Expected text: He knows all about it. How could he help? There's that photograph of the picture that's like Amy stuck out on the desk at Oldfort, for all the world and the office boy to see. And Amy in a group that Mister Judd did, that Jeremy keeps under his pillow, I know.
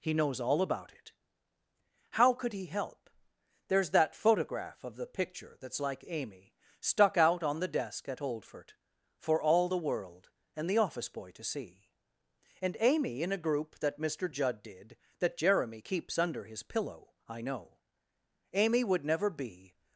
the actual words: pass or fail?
fail